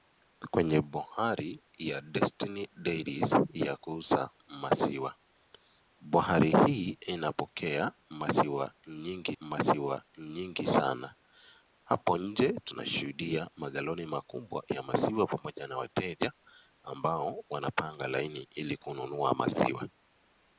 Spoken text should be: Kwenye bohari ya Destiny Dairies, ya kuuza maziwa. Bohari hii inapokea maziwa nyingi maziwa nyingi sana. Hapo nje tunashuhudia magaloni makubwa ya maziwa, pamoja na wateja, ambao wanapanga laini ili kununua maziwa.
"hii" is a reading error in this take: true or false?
false